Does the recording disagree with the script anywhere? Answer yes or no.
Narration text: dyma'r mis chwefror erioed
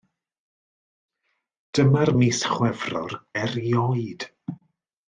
no